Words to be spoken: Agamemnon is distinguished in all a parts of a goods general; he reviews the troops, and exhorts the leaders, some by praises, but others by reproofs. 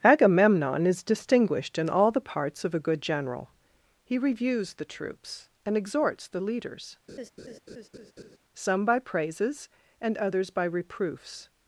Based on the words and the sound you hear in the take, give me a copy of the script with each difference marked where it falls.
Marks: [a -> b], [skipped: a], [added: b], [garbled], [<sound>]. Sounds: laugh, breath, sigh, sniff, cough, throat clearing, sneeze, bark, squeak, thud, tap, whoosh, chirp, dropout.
Agamemnon is distinguished in all [a -> the] parts of a [goods -> good] general; he reviews the troops, and exhorts the leaders, [laugh] some by praises, [but -> and] others by reproofs.